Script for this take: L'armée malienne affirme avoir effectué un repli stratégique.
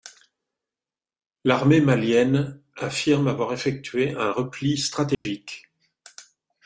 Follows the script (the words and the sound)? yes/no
no